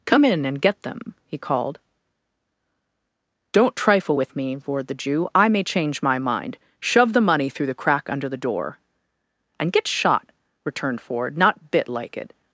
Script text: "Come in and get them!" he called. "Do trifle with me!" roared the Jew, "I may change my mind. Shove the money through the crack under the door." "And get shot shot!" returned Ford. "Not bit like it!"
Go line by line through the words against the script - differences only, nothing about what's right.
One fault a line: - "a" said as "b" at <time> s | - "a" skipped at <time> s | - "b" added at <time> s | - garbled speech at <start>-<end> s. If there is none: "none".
- "Do" said as "Don't" at 3.5 s
- "shot" skipped at 10.3 s